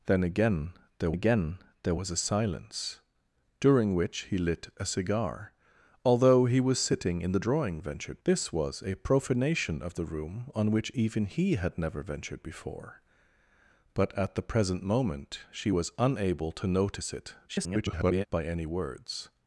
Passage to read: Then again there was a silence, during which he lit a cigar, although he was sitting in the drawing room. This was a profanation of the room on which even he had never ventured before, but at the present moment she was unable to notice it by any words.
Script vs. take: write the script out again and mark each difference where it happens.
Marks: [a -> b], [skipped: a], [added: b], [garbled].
Then again there [added: again there] was a silence, during which he lit a cigar, although he was sitting in the drawing [room. -> ventured] This was a profanation of the room on which even he had never ventured before, but at the present moment she was unable to notice it [garbled] by any words.